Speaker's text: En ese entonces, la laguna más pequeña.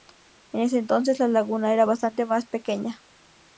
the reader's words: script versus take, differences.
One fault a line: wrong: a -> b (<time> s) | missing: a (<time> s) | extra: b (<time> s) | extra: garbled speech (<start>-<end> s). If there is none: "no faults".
extra: era bastante (1.7 s)